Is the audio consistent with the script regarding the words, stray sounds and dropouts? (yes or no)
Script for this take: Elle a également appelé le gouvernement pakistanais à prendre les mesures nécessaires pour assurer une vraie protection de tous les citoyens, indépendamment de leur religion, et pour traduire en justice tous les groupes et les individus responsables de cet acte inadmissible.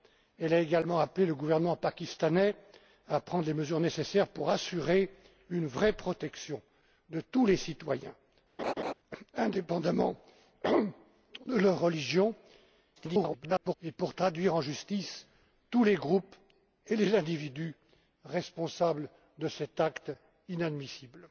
no